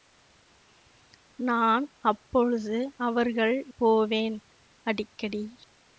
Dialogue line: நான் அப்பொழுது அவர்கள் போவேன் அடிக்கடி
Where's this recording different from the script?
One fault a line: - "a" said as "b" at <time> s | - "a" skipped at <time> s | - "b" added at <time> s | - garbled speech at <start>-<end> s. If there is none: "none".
none